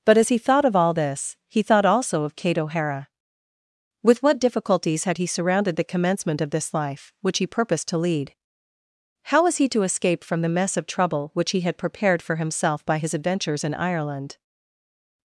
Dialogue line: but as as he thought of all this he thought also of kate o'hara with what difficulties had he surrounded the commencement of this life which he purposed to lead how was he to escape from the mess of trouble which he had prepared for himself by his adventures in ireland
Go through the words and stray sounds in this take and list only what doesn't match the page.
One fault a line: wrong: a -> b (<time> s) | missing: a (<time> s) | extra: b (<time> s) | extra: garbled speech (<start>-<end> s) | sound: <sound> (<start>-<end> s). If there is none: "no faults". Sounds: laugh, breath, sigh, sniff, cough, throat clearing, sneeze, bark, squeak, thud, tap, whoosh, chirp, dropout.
missing: as (0.3 s)